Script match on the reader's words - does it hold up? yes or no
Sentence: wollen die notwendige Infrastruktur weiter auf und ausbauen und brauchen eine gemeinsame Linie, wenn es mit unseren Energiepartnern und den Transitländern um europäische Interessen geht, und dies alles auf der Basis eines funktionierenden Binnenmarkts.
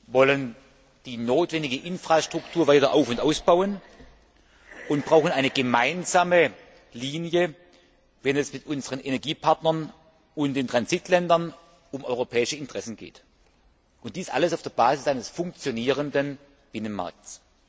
yes